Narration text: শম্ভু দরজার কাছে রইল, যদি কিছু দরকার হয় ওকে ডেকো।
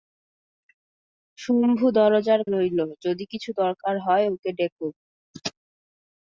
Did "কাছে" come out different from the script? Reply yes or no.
yes